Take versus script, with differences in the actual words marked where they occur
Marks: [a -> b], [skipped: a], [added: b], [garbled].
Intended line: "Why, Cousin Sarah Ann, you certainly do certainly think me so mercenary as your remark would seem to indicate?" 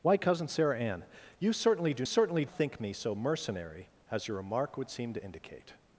"Why, Cousin Sarah Ann, you certainly do certainly think me so mercenary as your remark would seem to indicate?"